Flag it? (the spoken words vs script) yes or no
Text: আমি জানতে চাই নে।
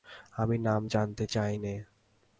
yes